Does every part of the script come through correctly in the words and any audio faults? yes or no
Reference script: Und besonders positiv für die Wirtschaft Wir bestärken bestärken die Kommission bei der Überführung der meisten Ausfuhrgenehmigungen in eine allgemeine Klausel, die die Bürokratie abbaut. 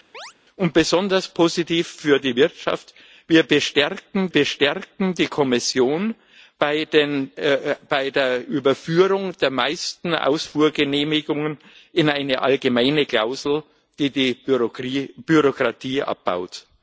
no